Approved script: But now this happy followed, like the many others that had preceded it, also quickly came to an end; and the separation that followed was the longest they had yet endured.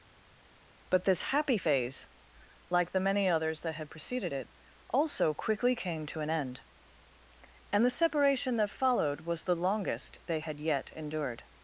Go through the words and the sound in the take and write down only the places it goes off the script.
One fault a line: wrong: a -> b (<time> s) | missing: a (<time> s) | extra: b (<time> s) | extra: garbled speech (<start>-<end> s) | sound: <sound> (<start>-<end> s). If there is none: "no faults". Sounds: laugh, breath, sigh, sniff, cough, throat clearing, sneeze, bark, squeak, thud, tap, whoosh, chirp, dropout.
missing: now (1.0 s)
wrong: followed -> phase (1.5 s)